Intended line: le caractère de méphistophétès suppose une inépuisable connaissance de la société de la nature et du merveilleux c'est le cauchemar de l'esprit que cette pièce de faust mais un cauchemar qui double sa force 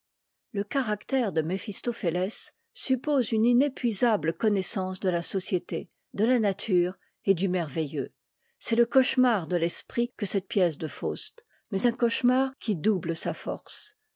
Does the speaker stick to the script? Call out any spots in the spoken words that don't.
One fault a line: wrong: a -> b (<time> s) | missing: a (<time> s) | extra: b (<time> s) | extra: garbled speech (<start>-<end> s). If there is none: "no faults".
no faults